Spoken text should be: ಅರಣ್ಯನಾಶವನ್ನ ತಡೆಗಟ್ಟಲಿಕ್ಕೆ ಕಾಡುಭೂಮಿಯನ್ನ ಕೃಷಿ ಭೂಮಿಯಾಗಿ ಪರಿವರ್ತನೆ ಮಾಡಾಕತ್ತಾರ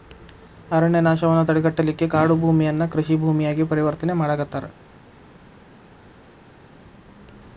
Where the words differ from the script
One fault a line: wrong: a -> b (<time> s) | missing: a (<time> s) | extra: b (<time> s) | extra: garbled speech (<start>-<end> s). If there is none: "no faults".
no faults